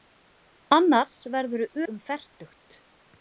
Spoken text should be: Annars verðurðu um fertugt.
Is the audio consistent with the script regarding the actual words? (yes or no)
yes